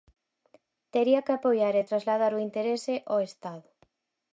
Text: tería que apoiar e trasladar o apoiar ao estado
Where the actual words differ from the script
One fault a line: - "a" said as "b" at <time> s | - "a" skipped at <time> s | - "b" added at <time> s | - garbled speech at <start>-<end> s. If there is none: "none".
- "apoiar" said as "interese" at 2.5 s